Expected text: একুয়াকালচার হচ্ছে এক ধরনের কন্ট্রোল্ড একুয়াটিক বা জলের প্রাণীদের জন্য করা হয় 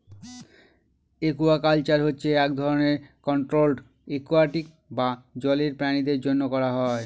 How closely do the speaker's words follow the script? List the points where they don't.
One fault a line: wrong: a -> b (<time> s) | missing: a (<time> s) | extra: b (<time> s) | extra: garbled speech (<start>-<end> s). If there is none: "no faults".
no faults